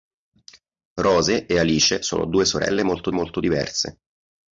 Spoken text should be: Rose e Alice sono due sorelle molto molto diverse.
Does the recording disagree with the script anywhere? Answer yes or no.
no